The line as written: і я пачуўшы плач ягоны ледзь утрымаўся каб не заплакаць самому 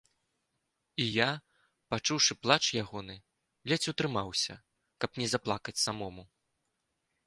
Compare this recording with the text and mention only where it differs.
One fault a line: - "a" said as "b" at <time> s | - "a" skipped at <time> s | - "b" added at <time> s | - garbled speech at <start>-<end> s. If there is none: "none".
none